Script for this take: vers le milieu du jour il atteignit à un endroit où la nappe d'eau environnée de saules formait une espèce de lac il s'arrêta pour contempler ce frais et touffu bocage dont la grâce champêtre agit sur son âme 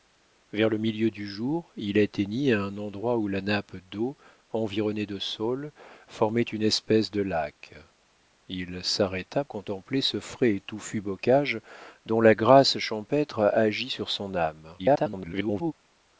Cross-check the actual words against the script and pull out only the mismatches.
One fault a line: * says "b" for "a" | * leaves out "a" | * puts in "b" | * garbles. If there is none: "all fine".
* leaves out "pour"
* garbles